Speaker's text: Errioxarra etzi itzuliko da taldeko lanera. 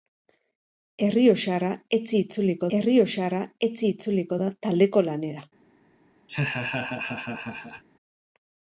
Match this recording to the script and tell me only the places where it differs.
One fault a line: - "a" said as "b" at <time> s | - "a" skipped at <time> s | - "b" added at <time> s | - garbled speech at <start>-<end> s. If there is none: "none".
- "errioxarra etzi itzuliko" added at 2.8 s